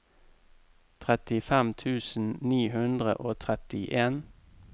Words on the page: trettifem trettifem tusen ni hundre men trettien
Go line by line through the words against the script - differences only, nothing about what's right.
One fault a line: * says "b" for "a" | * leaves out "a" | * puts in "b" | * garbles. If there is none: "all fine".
* leaves out "trettifem"
* says "og" for "men"